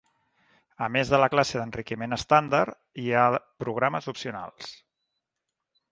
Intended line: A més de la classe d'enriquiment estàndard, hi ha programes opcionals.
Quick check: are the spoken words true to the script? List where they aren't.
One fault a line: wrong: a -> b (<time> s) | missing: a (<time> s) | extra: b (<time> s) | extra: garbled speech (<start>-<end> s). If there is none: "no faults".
no faults